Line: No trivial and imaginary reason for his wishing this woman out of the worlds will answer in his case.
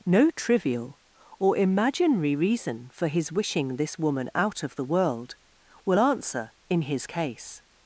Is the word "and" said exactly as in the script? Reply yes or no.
no